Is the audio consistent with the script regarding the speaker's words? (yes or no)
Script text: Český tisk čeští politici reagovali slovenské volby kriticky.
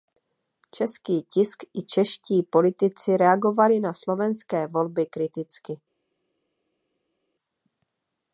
no